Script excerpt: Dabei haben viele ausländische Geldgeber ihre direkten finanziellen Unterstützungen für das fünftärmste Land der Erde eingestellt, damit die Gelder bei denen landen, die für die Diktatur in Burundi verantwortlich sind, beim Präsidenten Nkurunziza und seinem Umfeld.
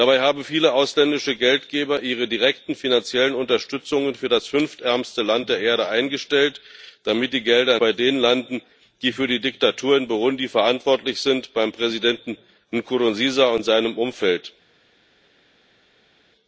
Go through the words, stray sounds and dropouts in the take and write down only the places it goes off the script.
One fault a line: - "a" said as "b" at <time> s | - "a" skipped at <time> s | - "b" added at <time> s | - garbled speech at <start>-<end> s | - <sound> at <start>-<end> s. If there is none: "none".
none